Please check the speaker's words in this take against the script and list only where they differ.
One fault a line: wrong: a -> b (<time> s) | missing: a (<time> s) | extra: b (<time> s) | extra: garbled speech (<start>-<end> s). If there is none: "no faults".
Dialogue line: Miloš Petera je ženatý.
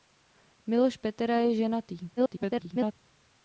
extra: garbled speech (2.2-2.9 s)